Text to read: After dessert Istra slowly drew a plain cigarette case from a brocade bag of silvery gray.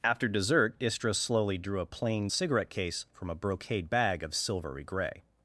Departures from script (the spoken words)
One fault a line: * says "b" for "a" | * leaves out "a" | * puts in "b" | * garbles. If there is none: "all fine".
all fine